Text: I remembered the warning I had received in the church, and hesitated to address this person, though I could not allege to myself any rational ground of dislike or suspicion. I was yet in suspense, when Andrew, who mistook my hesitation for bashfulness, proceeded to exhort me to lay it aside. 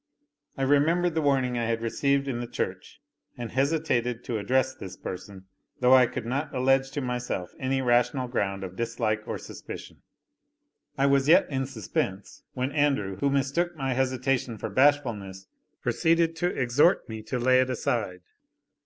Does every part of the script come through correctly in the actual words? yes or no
yes